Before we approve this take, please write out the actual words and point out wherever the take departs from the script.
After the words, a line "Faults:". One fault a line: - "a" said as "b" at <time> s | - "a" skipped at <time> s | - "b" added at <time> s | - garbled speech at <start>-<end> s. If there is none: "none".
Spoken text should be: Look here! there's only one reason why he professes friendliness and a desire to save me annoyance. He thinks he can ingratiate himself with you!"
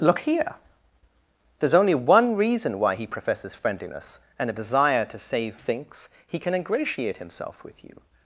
Look here! there's only one reason why he professes friendliness and a desire to save thinks he can ingratiate himself with you!"
Faults:
- "me annoyance He" skipped at 5.6 s